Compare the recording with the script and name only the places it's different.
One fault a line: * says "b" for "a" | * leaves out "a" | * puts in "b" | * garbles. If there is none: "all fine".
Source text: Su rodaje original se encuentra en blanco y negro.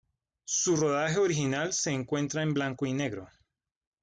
all fine